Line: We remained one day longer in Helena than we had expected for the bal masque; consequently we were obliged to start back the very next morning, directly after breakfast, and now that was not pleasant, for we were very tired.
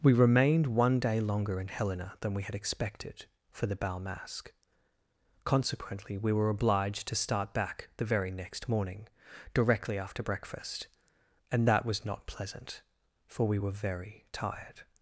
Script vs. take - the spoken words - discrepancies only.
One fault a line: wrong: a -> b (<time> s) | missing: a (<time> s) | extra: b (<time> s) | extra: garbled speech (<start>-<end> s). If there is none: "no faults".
missing: now (11.7 s)